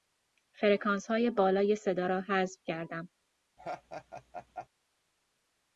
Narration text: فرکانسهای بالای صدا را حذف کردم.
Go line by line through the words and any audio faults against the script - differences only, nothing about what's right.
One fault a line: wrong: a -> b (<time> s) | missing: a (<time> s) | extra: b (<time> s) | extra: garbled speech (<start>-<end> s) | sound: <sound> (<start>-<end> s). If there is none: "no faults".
sound: laugh (3.6-4.7 s)